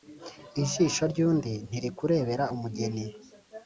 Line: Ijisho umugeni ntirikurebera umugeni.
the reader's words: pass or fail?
fail